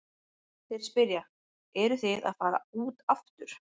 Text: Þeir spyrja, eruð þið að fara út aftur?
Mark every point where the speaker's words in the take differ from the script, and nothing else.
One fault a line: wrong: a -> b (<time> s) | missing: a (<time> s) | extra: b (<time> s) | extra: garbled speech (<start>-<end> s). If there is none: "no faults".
no faults